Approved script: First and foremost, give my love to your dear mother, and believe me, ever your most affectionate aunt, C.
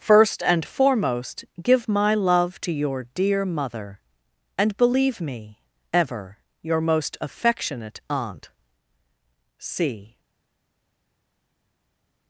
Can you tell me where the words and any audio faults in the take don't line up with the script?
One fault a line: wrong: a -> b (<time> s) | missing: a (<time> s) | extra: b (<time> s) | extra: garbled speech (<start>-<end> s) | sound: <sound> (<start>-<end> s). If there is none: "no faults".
no faults